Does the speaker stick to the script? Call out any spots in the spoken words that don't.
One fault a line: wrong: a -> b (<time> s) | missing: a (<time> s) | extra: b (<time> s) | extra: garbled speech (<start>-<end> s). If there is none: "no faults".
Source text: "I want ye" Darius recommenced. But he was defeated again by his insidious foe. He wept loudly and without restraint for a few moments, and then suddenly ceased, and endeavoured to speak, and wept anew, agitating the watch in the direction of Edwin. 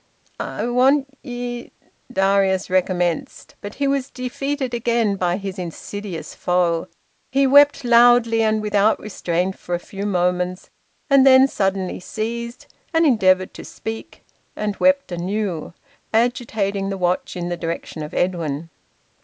no faults